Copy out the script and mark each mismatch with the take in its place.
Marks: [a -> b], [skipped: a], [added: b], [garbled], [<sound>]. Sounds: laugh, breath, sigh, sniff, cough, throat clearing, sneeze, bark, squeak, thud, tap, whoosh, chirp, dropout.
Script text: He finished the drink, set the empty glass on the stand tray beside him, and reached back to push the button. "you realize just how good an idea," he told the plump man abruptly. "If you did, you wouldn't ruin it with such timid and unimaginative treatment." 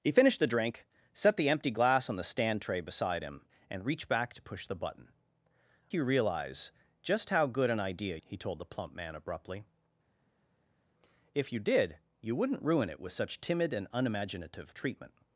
He finished the drink, set the empty glass on the stand tray beside him, and reached back to push the button. "you realize just how good an idea," he told the plump man abruptly. "If you did, you wouldn't ruin it with such timid and unimaginative treatment."